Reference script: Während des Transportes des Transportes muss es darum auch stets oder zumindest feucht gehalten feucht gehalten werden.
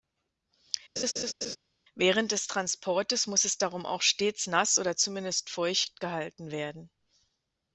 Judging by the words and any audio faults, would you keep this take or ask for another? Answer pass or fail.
fail